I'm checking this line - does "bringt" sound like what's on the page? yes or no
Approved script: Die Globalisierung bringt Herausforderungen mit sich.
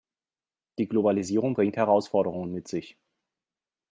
yes